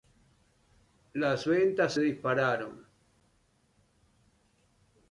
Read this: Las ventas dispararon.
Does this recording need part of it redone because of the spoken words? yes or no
no